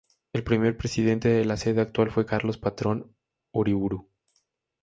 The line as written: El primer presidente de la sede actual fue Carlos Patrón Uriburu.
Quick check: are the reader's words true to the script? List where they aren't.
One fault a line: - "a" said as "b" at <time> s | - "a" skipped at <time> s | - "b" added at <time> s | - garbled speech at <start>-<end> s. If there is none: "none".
none